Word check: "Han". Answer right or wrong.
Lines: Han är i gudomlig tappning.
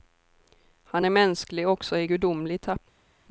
right